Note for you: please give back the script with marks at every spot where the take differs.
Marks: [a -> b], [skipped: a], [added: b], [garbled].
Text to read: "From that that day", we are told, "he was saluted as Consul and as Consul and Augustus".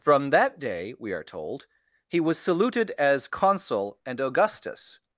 "From that [skipped: that] day", we are told, "he was saluted as Consul and [skipped: as Consul and] Augustus".